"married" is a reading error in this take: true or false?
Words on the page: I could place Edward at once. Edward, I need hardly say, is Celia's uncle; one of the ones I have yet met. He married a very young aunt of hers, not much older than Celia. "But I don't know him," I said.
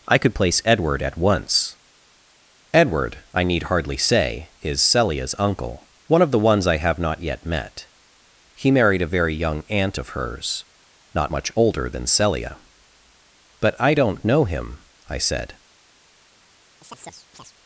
false